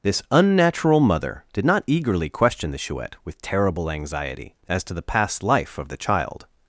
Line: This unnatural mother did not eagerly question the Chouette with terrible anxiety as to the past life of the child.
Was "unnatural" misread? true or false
false